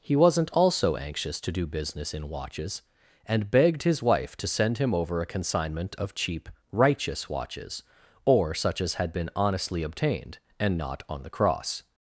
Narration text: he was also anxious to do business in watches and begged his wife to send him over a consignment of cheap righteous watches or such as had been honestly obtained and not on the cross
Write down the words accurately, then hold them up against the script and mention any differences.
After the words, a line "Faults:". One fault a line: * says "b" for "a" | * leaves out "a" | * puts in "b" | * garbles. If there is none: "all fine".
he wasn't also anxious to do business in watches and begged his wife to send him over a consignment of cheap righteous watches or such as had been honestly obtained and not on the cross
Faults:
* says "wasn't" for "was"